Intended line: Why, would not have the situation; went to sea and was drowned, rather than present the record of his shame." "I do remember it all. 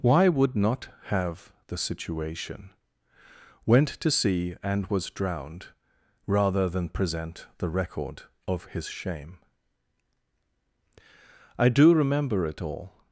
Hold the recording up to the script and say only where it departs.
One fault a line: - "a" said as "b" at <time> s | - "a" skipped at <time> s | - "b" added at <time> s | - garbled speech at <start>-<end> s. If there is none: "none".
none